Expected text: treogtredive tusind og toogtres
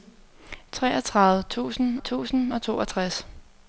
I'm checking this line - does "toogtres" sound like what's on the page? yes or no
yes